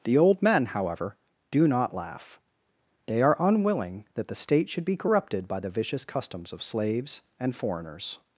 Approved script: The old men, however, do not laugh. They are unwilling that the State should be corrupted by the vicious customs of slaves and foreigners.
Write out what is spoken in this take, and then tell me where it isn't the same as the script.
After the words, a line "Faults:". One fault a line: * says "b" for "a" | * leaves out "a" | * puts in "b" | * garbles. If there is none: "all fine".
The old men, however, do not laugh. They are unwilling that the State should be corrupted by the vicious customs of slaves and foreigners.
Faults:
all fine